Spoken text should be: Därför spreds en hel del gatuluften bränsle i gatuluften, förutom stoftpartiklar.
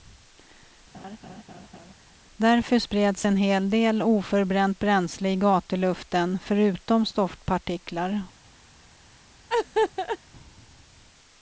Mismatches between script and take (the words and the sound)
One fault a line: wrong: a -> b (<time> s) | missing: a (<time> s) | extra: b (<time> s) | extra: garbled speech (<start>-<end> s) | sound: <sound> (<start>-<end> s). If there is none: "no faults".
sound: laugh (0.9-1.9 s)
wrong: gatuluften -> oförbränt (4.0 s)
sound: laugh (9.5-10.2 s)